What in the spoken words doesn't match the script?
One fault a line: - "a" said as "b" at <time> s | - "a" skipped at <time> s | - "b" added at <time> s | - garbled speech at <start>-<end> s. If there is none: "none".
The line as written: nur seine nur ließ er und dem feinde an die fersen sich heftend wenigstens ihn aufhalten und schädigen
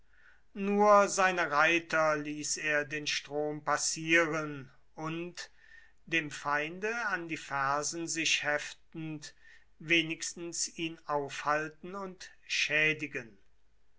- "nur" said as "reiter" at 1.5 s
- "den strom passieren" added at 2.9 s